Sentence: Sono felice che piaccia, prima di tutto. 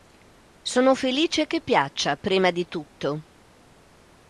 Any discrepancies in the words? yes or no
no